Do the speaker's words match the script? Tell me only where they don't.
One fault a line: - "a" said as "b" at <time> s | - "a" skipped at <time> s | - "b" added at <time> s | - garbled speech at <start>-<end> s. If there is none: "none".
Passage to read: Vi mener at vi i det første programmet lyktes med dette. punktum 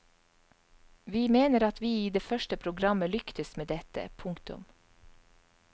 none